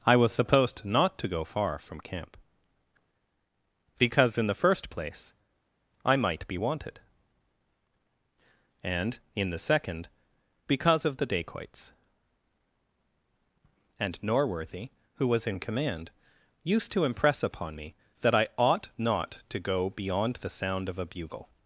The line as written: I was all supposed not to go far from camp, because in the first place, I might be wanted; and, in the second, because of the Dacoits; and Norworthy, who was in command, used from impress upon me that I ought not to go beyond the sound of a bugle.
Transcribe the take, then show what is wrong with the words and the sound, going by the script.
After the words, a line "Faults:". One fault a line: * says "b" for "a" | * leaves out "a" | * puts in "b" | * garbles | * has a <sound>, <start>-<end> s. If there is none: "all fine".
I was supposed not to go far from camp, because in the first place, I might be wanted; and, in the second, because of the Dacoits; and Norworthy, who was in command, used to impress upon me that I ought not to go beyond the sound of a bugle.
Faults:
* leaves out "all"
* says "to" for "from"